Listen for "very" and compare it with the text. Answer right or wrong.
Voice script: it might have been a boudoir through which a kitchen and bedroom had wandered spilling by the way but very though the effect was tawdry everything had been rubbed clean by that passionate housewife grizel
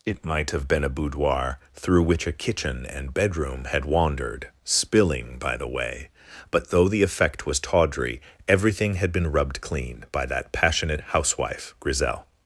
wrong